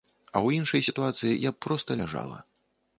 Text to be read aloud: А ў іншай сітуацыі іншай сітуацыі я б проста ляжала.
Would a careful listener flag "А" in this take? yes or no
no